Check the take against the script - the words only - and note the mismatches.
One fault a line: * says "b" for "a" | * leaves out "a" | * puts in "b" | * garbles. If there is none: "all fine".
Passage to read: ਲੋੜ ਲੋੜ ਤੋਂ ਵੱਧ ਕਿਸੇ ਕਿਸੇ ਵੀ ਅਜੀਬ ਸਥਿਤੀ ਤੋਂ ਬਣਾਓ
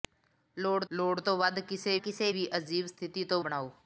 all fine